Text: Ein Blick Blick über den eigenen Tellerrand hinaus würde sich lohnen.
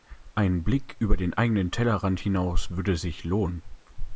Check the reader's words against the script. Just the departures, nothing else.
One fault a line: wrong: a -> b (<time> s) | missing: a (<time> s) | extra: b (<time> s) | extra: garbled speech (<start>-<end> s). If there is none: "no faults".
missing: Blick (0.9 s)